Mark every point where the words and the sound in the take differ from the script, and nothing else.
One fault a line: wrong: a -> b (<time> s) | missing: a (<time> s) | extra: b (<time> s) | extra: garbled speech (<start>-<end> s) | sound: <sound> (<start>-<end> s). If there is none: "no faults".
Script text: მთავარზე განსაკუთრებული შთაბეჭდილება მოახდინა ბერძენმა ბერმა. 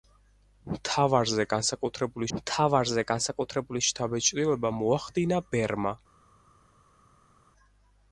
extra: მთავარზე განსაკუთრებული (2.4 s)
missing: ბერძენმა (5.4 s)